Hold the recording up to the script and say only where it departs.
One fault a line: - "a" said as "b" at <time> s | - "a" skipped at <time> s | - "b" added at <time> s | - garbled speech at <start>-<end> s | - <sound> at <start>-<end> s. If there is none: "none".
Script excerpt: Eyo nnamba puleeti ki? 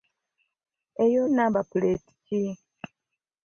none